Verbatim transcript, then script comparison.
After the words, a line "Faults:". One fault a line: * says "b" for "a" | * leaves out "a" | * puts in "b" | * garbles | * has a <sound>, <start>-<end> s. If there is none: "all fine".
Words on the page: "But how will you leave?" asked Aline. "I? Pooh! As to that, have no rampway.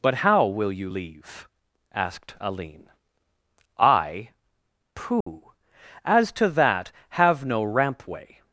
"But how will you leave?" asked Aline. "I? Pooh! As to that, have no rampway.
Faults:
* has a dropout, 5.2-5.3 s